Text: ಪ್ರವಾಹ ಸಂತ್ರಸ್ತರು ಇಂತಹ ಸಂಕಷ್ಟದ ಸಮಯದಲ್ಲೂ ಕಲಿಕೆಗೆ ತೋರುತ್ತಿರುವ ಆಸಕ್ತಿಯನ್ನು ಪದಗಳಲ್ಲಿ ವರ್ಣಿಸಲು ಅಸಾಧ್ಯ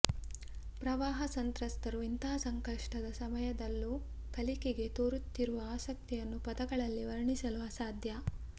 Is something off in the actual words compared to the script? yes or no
no